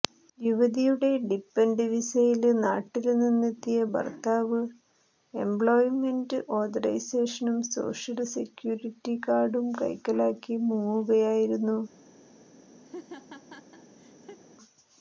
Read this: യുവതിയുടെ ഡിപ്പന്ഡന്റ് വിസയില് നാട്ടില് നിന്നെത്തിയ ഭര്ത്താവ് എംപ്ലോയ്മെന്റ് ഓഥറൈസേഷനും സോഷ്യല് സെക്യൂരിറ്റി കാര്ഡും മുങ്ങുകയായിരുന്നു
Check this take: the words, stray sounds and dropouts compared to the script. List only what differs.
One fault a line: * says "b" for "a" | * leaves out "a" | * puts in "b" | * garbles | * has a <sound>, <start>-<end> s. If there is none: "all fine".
* puts in "കൈക്കലാക്കി"
* has a laugh, 12.9-14.4 s